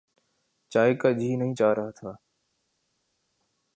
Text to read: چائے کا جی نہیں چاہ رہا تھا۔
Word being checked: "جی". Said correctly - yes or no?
yes